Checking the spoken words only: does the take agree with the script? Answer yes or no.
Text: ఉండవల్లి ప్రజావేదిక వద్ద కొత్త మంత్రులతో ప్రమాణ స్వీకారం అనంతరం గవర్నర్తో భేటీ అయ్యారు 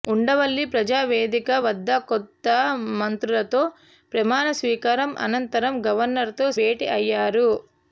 yes